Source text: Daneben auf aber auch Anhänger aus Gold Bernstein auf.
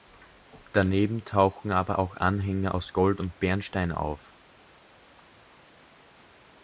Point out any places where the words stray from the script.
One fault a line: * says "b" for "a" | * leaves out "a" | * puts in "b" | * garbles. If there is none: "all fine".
* says "tauchen" for "auf"
* puts in "und"